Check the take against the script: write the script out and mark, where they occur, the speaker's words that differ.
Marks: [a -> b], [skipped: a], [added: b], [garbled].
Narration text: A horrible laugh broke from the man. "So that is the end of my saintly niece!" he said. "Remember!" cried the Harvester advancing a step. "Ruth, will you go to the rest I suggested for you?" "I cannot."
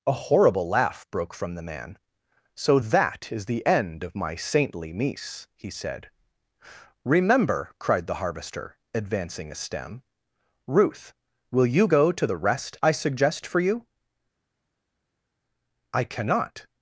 A horrible laugh broke from the man. "So that is the end of my saintly niece!" he said. "Remember!" cried the Harvester advancing a [step. -> stem] "Ruth, will you go to the rest I [suggested -> suggest] for you?" "I cannot."